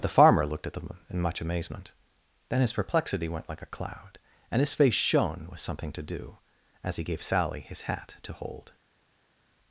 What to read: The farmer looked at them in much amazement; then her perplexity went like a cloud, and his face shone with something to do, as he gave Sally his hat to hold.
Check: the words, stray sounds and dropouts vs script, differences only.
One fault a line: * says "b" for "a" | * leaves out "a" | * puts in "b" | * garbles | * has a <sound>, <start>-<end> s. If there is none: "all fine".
* says "his" for "her"